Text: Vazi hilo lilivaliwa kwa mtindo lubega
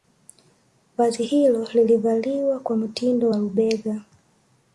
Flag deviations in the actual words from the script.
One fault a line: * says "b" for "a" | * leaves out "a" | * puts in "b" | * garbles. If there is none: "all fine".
* puts in "wa"